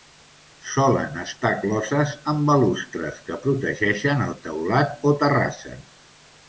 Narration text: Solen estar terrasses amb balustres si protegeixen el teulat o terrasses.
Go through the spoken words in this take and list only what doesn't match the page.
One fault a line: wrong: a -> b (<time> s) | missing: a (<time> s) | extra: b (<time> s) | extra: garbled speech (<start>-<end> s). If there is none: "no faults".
wrong: terrasses -> closes (1.6 s)
wrong: si -> que (3.3 s)